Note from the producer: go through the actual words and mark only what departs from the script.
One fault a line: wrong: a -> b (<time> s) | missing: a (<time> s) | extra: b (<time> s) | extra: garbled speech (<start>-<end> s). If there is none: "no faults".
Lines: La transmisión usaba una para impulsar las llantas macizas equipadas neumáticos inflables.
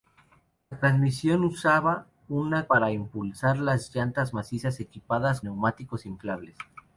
no faults